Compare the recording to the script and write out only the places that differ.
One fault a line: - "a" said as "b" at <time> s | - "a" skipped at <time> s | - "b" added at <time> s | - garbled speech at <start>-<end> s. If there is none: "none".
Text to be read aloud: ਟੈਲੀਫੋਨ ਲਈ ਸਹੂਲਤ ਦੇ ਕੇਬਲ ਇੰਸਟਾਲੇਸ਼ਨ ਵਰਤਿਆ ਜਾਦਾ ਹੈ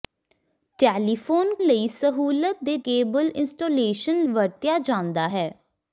none